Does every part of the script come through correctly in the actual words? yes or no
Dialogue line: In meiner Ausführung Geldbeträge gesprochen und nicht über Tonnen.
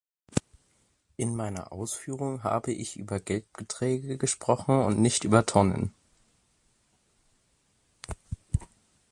no